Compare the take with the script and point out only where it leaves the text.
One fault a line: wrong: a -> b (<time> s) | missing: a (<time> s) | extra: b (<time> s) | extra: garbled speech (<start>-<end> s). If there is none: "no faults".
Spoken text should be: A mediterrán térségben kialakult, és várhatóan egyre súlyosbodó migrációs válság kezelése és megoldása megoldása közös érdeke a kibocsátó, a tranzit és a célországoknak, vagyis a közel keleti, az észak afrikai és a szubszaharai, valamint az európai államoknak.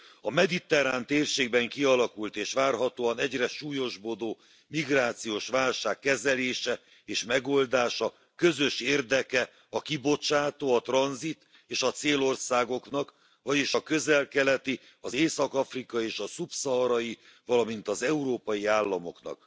missing: megoldása (8.1 s)